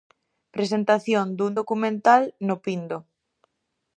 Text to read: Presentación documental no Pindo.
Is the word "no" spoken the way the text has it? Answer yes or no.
yes